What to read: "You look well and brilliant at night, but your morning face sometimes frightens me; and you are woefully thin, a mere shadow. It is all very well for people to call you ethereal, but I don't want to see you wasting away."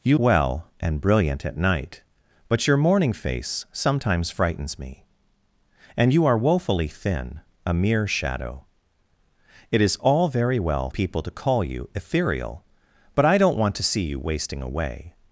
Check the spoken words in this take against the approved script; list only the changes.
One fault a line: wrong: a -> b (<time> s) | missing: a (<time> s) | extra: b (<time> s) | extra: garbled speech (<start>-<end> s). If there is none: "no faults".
missing: look (0.2 s)
missing: for (10.9 s)